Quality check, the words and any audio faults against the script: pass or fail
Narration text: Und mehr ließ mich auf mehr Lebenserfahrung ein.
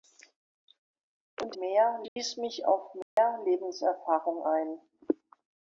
fail